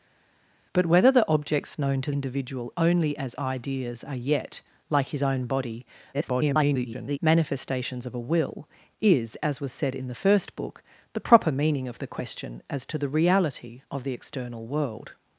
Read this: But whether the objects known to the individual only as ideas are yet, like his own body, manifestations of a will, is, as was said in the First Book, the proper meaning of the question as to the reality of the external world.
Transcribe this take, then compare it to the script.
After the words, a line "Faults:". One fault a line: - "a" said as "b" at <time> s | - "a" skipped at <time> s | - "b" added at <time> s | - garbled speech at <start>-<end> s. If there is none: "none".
But whether the objects known to individual only as ideas are yet, like his own body, [garbled] manifestations of a will, is, as was said in the First Book, the proper meaning of the question as to the reality of the external world.
Faults:
- "the" skipped at 2.1 s
- garbled speech at 6.1-7.2 s